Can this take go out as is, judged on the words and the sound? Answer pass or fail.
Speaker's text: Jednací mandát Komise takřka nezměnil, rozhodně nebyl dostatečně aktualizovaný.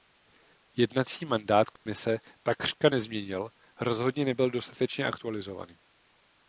fail